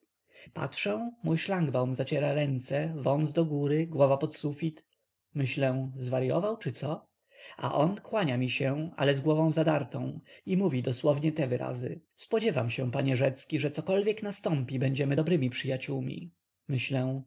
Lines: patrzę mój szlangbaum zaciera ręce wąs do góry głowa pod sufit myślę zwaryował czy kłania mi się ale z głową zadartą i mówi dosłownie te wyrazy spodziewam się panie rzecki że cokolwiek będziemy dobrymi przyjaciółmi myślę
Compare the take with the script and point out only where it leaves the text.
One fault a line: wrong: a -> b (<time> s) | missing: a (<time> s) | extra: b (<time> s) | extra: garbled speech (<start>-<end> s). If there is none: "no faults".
extra: co a on (6.7 s)
extra: nastąpi (14.2 s)